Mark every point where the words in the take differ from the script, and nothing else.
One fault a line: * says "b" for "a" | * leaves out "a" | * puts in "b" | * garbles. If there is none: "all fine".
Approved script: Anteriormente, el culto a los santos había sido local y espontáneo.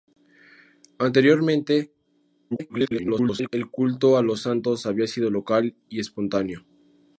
* garbles